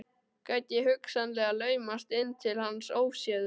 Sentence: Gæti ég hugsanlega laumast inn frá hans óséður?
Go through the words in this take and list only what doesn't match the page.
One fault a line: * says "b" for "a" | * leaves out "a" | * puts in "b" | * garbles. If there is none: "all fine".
* says "til" for "frá"